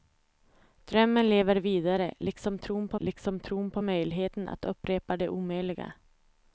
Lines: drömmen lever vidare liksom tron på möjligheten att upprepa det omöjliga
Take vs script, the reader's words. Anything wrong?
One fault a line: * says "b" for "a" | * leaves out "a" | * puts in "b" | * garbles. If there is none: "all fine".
* puts in "liksom tron på"